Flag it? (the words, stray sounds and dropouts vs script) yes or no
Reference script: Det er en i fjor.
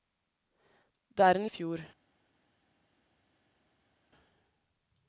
no